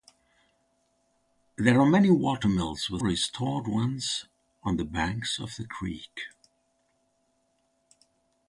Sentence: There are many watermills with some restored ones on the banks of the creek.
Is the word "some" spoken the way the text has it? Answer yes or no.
no